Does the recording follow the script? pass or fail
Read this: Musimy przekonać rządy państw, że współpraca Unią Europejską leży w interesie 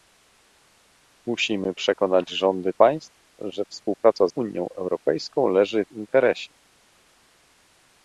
pass